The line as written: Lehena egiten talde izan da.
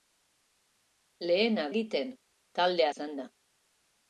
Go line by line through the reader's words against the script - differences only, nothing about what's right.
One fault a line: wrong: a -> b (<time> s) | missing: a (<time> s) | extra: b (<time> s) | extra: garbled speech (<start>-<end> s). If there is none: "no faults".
no faults